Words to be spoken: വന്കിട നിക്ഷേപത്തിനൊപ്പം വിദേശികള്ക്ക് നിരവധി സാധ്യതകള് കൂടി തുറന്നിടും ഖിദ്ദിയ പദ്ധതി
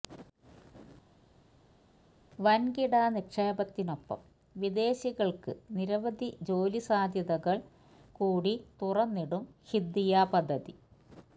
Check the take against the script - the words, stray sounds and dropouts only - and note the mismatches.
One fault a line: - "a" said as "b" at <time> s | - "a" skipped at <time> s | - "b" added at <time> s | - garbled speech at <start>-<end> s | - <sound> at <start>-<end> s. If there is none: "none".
- "ജോലി" added at 6.5 s